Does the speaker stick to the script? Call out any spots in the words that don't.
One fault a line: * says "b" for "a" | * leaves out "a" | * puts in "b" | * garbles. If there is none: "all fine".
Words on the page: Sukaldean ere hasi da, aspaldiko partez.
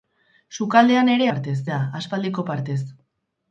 * says "partez" for "hasi"